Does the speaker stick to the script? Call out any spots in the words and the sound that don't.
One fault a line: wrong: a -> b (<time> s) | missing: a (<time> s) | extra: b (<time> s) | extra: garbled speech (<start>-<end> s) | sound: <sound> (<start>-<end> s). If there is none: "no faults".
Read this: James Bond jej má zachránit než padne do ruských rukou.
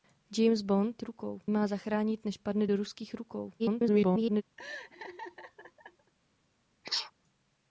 wrong: jej -> rukou (1.0 s)
extra: garbled speech (3.6-4.4 s)
sound: laugh (4.6-6.1 s)
sound: sneeze (6.8-7.1 s)